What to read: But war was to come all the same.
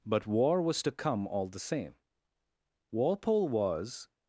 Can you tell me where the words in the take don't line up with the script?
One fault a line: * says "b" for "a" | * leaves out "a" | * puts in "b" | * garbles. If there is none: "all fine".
* puts in "Walpole was"